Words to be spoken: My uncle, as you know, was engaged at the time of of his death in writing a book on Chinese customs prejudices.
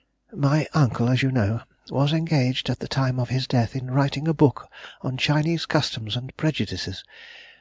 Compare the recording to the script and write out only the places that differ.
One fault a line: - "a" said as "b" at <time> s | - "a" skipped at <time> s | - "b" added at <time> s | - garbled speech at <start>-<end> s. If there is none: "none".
- "of" skipped at 3.3 s
- "and" added at 6.2 s